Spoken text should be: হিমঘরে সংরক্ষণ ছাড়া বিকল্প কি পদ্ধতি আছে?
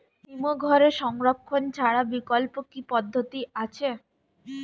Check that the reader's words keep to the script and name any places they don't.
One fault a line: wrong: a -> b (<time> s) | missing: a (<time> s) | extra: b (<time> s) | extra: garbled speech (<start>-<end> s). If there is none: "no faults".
no faults